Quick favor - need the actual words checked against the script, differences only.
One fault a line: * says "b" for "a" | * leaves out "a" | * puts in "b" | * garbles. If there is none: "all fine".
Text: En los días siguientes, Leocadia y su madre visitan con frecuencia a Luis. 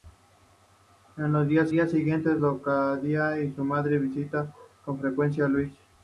* puts in "días"